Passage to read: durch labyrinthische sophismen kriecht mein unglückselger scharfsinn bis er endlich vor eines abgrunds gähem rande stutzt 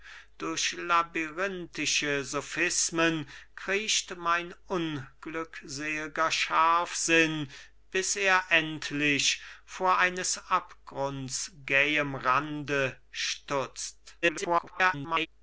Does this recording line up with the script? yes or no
no